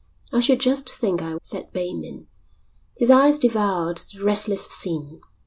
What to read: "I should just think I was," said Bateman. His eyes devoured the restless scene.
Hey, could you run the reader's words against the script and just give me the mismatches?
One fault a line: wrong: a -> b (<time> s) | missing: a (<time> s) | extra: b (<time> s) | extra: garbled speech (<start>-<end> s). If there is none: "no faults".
missing: was (1.4 s)